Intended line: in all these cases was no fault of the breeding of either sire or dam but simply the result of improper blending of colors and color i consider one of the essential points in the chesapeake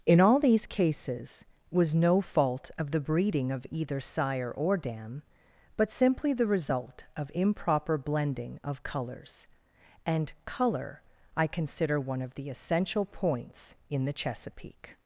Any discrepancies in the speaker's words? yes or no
no